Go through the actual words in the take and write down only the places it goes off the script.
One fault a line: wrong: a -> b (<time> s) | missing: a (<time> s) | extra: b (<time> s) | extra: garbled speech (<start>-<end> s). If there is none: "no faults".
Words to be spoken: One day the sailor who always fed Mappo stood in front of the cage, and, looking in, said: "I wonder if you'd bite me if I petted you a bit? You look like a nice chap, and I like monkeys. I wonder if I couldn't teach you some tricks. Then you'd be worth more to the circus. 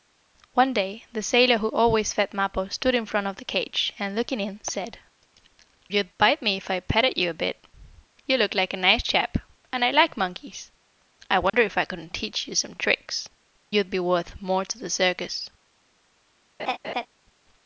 missing: I wonder if (5.0 s)
missing: Then (13.3 s)